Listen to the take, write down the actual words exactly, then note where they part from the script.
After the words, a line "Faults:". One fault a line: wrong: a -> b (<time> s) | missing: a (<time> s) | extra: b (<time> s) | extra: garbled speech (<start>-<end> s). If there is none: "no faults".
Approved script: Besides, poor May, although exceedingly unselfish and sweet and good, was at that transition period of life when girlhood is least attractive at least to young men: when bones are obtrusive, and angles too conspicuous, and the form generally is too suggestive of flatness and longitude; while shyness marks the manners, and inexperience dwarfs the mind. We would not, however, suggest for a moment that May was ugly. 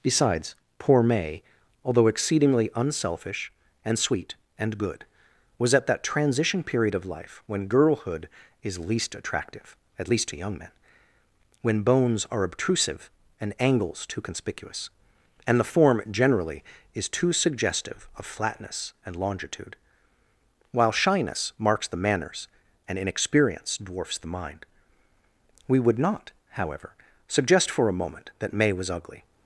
Besides, poor May, although exceedingly unselfish and sweet and good, was at that transition period of life when girlhood is least attractive at least to young men: when bones are obtrusive, and angles too conspicuous, and the form generally is too suggestive of flatness and longitude; while shyness marks the manners, and inexperience dwarfs the mind. We would not, however, suggest for a moment that May was ugly.
Faults:
no faults